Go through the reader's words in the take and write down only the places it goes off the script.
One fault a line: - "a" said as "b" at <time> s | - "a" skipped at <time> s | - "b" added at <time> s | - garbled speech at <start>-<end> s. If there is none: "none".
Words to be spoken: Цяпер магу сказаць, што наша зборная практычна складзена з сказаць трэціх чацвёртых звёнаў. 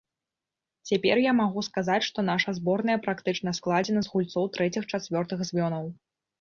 - "я" added at 1.2 s
- "сказаць" said as "гульцоў" at 4.2 s